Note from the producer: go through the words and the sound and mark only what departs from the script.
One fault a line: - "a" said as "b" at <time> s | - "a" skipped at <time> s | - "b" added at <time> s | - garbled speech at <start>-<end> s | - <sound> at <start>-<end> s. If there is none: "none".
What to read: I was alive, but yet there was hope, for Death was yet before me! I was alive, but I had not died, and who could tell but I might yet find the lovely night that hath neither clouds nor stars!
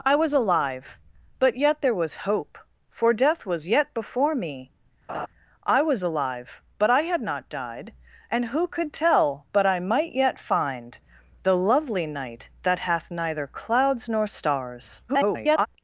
- laugh at 5.1-5.3 s
- garbled speech at 15.1-15.7 s